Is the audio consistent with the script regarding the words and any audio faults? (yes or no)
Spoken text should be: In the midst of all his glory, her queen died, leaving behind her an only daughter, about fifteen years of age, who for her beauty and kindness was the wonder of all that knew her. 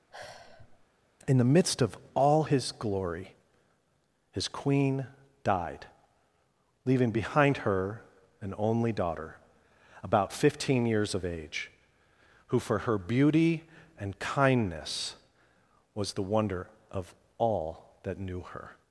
no